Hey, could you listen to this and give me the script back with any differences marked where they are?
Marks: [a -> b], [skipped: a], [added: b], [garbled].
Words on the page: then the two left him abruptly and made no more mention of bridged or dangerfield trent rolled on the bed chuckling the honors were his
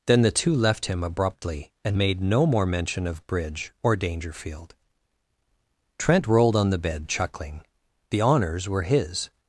then the two left him abruptly and made no more mention of [bridged -> bridge] or dangerfield trent rolled on the bed chuckling the honors were his